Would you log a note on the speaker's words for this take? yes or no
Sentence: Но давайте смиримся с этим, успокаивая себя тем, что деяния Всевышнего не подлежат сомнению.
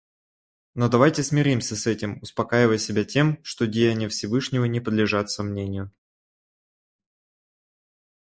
no